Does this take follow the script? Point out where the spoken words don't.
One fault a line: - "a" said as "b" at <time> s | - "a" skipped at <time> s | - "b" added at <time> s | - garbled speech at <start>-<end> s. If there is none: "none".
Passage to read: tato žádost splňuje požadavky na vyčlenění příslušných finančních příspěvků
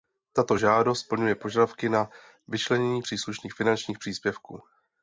none